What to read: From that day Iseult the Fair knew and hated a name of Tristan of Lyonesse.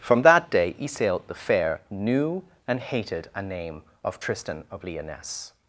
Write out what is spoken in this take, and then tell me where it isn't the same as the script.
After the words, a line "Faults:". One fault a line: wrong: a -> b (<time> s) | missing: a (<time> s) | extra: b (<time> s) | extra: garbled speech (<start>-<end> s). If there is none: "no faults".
From that day Iseult the Fair knew and hated a name of Tristan of Lyonesse.
Faults:
no faults